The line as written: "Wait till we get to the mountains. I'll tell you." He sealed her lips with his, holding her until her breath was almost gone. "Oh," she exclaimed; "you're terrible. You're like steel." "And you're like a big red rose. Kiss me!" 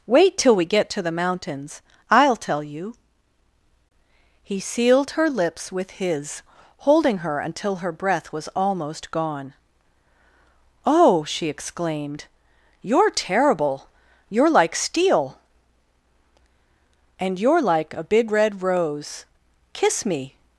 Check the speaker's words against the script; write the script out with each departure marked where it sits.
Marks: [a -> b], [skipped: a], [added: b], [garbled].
"Wait till we get to the mountains. I'll tell you." He sealed her lips with his, holding her until her breath was almost gone. "Oh," she exclaimed; "you're terrible. You're like steel." "And you're like a big red rose. Kiss me!"